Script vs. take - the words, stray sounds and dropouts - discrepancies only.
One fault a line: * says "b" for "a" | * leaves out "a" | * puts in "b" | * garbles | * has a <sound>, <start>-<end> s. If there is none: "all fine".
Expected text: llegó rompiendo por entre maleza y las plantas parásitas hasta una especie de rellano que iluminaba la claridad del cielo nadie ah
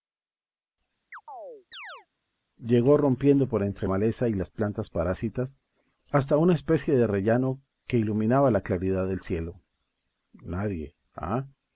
* has a chirp, 1.1-2.1 s